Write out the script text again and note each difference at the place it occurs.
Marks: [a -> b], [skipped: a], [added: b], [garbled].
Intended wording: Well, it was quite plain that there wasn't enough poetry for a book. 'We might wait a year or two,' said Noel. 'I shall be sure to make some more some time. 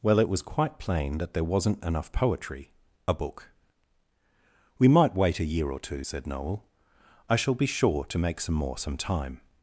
Well, it was quite plain that there wasn't enough poetry [skipped: for] a book. 'We might wait a year or two,' said Noel. 'I shall be sure to make some more some time.